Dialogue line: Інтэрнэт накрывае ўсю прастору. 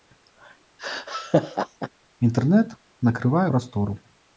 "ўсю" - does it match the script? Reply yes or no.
no